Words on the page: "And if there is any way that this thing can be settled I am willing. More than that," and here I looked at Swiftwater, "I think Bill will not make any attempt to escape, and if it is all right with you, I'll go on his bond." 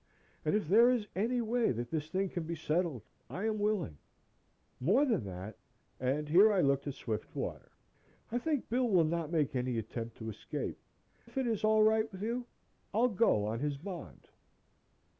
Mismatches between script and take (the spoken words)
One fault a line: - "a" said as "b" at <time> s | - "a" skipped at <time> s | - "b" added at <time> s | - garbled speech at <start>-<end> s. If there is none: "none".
- "and" skipped at 10.8 s